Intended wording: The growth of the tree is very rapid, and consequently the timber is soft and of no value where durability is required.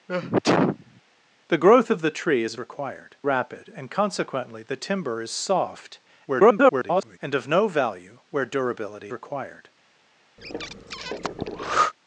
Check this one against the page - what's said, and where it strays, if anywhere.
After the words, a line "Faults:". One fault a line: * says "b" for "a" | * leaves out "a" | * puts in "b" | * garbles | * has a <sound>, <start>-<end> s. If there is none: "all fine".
The growth of the tree is required rapid, and consequently the timber is soft [garbled] and of no value where durability required.
Faults:
* has a sneeze, 0.1-1.0 s
* says "required" for "very"
* garbles
* leaves out "is"
* has a breath, 10.4-11.9 s